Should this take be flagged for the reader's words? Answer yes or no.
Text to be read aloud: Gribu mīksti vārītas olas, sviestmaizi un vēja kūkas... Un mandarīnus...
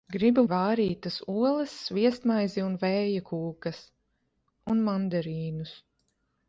yes